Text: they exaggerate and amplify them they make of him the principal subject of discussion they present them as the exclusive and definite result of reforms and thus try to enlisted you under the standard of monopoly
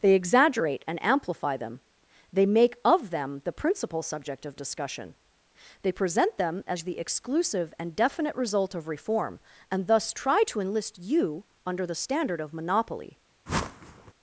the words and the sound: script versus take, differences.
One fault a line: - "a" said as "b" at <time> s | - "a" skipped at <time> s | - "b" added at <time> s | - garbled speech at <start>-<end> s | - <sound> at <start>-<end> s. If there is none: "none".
- "him" said as "them" at 3.1 s
- "reforms" said as "reform" at 8.9 s
- "enlisted" said as "enlist" at 10.6 s
- whoosh at 13.5-14.1 s